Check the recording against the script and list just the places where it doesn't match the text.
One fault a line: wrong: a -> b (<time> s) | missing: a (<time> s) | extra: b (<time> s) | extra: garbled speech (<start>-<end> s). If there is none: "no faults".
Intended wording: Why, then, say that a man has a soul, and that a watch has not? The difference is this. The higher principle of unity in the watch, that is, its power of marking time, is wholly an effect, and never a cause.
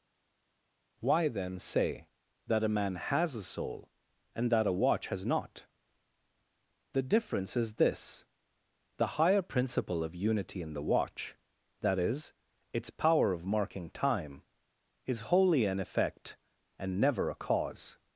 no faults